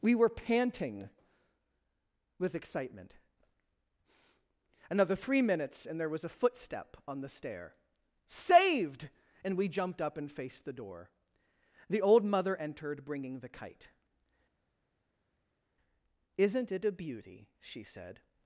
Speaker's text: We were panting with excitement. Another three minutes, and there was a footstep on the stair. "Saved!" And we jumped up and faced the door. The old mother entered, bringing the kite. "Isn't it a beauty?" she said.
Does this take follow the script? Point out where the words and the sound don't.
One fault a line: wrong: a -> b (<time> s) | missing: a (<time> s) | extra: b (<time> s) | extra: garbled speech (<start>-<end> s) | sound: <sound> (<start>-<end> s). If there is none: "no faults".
no faults